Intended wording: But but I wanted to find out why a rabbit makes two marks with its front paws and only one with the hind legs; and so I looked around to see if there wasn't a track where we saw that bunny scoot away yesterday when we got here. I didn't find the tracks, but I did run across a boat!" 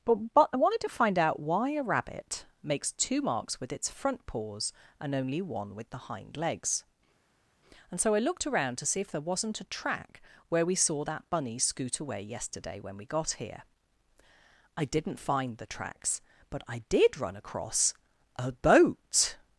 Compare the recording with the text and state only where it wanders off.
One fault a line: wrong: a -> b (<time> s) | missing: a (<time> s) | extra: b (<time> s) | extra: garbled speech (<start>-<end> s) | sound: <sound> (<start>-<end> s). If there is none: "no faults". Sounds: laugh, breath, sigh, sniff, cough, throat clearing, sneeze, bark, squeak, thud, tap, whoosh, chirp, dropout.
no faults